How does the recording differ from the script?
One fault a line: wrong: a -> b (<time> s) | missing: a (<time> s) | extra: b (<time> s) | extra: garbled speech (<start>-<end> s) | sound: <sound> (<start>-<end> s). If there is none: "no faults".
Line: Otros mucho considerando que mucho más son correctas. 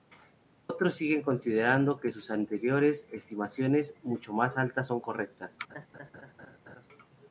wrong: mucho -> siguen (0.9 s)
extra: sus anteriores estimaciones (2.1 s)
extra: altas (4.6 s)
sound: laugh (5.7-6.9 s)